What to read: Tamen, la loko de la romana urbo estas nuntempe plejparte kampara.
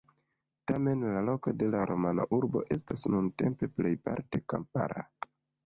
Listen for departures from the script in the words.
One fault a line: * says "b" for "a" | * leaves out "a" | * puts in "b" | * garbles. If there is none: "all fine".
all fine